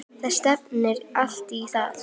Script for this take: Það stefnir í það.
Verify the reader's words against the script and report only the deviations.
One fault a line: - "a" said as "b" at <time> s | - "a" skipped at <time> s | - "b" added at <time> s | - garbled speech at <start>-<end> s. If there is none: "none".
- "allt" added at 1.2 s